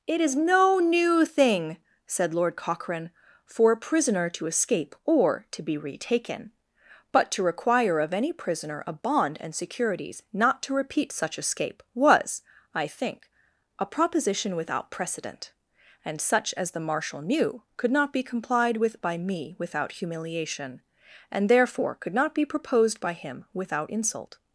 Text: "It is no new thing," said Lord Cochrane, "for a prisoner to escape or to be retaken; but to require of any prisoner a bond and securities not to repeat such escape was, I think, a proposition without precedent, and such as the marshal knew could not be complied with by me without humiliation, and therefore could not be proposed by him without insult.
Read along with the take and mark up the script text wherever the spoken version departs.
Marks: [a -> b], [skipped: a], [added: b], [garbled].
"It is no new thing," said Lord Cochrane, "for a prisoner to escape or to be retaken; but to require of any prisoner a bond and securities not to repeat such escape was, I think, a proposition without precedent, and such as the marshal knew could not be complied with by me without humiliation, and therefore could not be proposed by him without insult.